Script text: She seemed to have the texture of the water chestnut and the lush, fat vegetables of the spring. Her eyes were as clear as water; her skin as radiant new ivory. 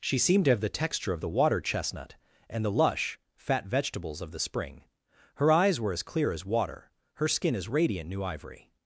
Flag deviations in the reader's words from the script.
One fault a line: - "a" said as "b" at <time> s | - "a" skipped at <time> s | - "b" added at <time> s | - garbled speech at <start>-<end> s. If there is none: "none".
none